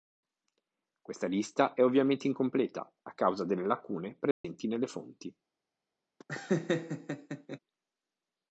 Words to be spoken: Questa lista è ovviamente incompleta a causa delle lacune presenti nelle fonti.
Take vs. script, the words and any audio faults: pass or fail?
fail